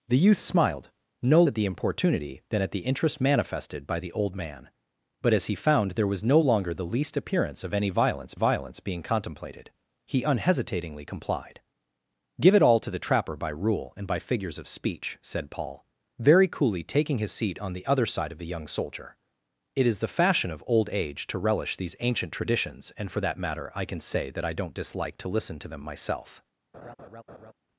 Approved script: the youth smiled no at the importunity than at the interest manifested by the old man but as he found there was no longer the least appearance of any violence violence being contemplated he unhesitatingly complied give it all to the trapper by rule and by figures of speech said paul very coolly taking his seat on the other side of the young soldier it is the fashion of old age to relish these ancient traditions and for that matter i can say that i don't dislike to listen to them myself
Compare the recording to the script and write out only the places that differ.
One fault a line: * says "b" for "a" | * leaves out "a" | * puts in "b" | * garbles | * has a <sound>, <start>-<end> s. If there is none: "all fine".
* has a laugh, 26.7-27.5 s